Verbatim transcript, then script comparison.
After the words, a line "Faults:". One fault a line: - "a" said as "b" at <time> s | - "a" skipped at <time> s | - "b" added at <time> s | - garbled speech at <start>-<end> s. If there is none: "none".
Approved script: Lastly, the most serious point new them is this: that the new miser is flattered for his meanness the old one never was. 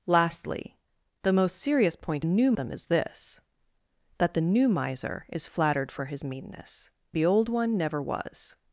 Lastly, the most serious point new them is this: that the new miser is flattered for his meanness the old one never was.
Faults:
none